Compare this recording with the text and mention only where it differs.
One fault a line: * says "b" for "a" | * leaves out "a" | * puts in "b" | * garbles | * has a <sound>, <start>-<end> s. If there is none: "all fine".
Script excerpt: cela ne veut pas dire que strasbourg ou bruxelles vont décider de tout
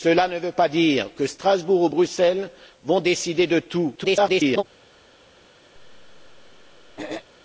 * garbles
* has a throat clearing, 5.8-7.3 s